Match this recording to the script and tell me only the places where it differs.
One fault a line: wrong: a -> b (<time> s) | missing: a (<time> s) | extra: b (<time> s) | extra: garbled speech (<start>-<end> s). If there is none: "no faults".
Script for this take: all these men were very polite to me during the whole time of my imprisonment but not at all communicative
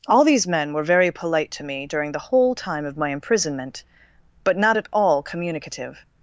no faults